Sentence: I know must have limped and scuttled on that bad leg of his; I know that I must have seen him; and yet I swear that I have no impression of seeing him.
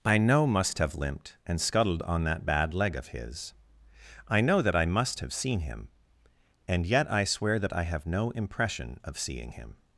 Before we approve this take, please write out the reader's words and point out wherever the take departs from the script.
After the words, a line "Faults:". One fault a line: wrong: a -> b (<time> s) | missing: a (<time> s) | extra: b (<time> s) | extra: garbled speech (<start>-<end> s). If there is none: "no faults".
I know must have limped and scuttled on that bad leg of his; I know that I must have seen him; and yet I swear that I have no impression of seeing him.
Faults:
no faults